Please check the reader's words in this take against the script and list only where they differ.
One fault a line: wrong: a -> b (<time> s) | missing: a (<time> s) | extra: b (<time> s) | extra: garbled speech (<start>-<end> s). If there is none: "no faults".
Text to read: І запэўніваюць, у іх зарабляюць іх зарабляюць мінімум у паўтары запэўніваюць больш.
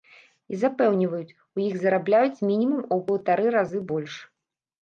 missing: іх зарабляюць (2.4 s)
wrong: запэўніваюць -> разы (3.6 s)